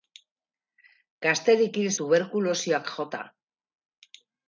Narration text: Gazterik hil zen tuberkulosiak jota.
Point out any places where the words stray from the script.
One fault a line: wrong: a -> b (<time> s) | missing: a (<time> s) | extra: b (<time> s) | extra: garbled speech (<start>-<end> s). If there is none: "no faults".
missing: zen (1.9 s)